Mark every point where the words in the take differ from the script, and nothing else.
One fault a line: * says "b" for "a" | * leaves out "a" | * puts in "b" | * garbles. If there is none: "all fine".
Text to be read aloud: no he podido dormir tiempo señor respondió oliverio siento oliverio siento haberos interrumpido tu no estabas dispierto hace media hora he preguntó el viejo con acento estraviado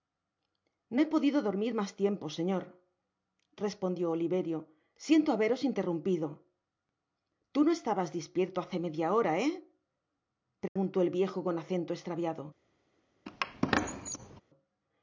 * puts in "mas"
* leaves out "oliverio siento"